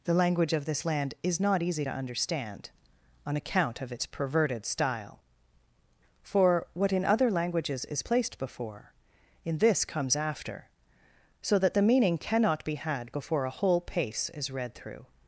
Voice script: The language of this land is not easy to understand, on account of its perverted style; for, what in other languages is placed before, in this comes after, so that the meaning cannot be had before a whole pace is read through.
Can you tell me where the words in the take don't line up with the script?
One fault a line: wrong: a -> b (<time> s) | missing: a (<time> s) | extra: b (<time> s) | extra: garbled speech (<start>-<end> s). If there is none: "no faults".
no faults